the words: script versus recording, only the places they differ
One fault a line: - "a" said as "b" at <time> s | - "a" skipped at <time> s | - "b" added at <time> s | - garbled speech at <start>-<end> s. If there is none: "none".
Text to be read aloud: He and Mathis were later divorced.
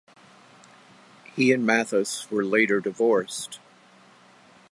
none